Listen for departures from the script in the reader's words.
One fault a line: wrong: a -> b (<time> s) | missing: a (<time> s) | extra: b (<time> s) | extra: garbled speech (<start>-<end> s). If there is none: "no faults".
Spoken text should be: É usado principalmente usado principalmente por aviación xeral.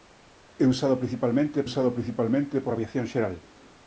no faults